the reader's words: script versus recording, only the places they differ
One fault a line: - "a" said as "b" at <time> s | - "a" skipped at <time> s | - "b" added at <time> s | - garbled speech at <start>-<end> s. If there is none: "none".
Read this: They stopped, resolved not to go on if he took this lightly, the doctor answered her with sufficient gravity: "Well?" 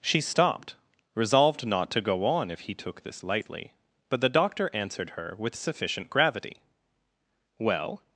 - "They" said as "She" at 0.0 s
- "but" added at 4.1 s